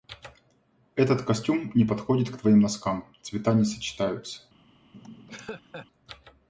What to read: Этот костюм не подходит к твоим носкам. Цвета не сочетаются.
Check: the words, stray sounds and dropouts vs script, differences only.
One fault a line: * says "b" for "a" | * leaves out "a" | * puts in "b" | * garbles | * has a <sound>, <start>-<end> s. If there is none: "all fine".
* has a laugh, 4.9-5.9 s